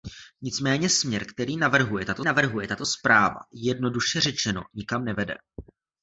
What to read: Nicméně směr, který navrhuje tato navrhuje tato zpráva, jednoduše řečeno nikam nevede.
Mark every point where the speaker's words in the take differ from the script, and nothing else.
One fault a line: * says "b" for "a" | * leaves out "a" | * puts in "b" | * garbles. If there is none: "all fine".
all fine